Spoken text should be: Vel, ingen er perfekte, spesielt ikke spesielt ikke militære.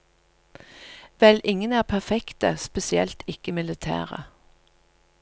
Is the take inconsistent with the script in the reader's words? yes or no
yes